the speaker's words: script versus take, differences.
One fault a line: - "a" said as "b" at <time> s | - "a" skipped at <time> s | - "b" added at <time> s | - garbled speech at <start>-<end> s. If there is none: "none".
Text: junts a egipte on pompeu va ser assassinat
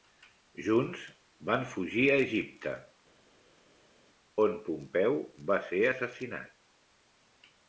- "van fugir" added at 1.5 s